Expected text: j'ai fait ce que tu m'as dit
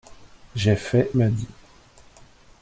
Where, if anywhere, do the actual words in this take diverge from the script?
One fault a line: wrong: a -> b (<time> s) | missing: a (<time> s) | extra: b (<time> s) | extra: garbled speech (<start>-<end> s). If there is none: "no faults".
missing: ce que tu (1.1 s)